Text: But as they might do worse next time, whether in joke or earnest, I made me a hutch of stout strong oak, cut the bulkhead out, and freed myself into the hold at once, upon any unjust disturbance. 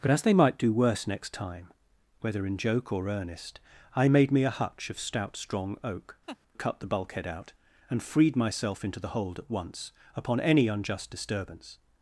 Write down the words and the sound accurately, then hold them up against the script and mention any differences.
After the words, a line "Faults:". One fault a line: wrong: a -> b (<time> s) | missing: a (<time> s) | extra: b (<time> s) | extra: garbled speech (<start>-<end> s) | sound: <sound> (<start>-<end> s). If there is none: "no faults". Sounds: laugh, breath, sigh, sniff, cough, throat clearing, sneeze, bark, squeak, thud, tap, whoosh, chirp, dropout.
But as they might do worse next time, whether in joke or earnest, I made me a hutch of stout strong oak, cut the bulkhead out, and freed myself into the hold at once, upon any unjust disturbance.
Faults:
sound: laugh (6.3-6.4 s)